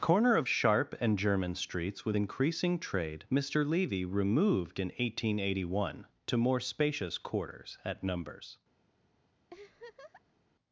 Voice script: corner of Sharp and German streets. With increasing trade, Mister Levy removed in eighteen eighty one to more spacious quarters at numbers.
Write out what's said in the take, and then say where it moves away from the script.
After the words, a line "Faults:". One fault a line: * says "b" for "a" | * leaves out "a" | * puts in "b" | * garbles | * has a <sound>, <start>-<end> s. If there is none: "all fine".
corner of Sharp and German streets. With increasing trade, Mister Levy removed in eighteen eighty one to more spacious quarters at numbers.
Faults:
* has a laugh, 9.5-10.4 s